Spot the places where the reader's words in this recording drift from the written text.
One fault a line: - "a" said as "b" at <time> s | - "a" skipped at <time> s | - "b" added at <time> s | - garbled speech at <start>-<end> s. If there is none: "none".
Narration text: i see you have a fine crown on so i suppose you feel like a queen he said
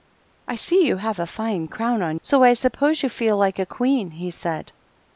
none